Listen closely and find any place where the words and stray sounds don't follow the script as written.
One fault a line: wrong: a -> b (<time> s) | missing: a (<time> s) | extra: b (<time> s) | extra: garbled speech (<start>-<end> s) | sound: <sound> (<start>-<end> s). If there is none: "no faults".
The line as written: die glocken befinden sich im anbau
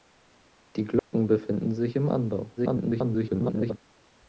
sound: dropout (1.0-1.1 s)
extra: garbled speech (2.6-3.8 s)